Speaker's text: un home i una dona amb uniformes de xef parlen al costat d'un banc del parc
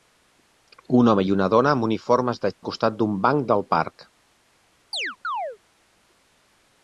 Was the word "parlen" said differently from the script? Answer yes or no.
yes